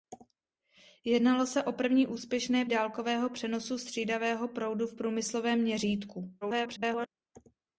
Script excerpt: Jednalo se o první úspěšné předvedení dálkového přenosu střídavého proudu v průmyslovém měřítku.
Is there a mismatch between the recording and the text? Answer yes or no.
yes